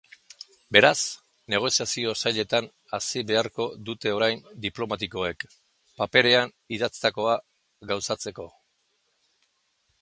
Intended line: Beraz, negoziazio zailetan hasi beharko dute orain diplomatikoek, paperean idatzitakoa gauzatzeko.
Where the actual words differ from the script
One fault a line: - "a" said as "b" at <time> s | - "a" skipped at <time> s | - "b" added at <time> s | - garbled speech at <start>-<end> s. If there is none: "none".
none